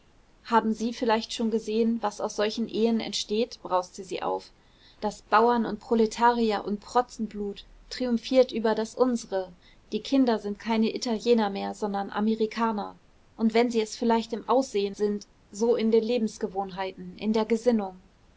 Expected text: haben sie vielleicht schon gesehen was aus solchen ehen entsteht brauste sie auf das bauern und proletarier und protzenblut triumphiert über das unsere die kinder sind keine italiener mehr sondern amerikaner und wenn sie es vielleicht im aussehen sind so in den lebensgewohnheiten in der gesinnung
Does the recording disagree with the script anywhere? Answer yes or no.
no